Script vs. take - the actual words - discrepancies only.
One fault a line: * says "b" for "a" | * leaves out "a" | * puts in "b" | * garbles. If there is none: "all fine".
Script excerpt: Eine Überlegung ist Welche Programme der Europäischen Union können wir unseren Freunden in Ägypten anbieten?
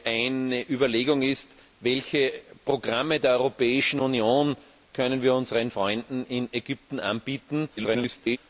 * garbles